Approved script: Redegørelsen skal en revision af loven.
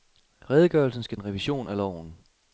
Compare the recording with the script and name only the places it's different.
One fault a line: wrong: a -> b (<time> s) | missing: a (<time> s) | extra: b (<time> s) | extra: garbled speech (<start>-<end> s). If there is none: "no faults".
no faults